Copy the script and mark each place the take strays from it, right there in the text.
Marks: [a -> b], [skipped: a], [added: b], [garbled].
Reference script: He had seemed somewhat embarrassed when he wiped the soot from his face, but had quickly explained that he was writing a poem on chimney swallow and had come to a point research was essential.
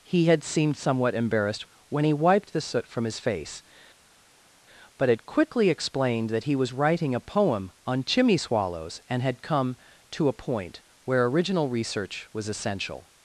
He had seemed somewhat embarrassed when he wiped the soot from his face, but had quickly explained that he was writing a poem on chimney [swallow -> swallows] and had come to a point [added: where original] research was essential.